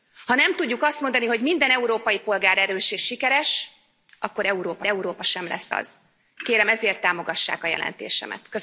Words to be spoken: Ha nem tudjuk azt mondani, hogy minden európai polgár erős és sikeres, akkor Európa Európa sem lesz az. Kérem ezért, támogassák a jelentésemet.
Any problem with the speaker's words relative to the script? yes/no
no